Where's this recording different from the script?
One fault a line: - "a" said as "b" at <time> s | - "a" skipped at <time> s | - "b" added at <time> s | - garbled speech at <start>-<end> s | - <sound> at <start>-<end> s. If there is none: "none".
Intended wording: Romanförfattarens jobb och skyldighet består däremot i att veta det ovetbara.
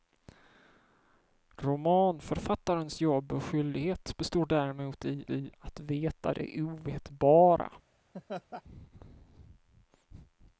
- "i" added at 5.3 s
- laugh at 8.1-8.6 s